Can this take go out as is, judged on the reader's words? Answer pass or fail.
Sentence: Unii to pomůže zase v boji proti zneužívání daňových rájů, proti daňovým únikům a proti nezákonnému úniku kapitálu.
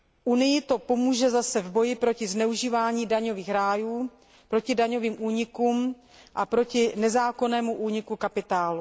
pass